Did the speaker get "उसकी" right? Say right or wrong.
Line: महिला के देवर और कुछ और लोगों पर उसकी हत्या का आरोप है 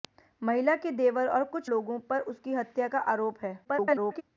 right